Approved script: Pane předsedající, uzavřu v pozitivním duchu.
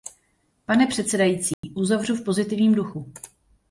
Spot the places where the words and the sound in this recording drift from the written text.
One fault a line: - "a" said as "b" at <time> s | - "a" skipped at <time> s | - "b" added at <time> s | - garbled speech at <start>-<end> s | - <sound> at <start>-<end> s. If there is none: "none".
- dropout at 1.5-1.6 s